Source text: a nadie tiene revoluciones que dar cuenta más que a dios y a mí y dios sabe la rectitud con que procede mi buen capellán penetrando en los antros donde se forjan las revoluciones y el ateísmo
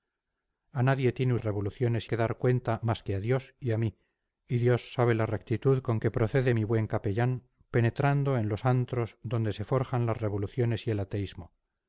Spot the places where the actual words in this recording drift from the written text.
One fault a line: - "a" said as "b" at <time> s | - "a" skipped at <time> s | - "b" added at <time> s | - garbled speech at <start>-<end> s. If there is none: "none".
none